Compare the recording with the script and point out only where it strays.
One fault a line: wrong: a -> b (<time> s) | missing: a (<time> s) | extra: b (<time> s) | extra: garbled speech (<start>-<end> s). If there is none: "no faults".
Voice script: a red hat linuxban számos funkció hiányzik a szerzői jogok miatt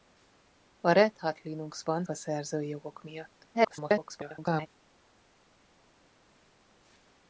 missing: számos funkció hiányzik (2.0 s)
extra: garbled speech (3.5-4.7 s)